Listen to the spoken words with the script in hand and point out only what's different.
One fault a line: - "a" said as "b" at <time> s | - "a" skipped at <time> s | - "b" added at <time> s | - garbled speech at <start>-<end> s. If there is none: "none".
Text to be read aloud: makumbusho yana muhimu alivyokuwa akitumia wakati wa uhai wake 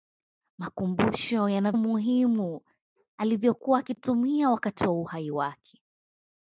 none